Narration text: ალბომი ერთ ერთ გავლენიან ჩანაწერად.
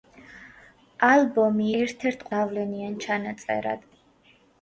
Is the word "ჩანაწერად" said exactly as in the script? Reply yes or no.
yes